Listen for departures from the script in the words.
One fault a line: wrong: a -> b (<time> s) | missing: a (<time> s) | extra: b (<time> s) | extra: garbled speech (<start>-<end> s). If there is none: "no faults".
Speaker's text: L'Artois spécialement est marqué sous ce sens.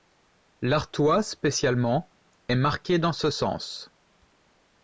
wrong: sous -> dans (3.0 s)